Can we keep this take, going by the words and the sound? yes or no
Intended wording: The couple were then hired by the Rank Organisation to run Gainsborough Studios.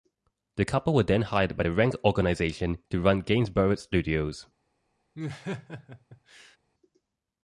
no